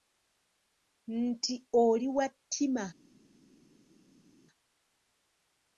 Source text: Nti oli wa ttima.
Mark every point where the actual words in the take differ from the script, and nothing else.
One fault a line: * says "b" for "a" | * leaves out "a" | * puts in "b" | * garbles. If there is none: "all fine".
all fine